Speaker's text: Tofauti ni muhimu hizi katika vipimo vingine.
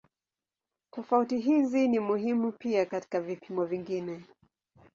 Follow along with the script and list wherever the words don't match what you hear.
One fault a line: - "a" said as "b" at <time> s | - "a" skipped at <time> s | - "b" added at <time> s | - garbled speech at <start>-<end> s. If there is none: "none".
- "hizi" added at 1.4 s
- "hizi" said as "pia" at 2.5 s